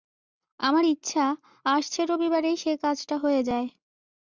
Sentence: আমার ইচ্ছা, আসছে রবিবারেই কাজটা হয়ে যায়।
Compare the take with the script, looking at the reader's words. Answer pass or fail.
fail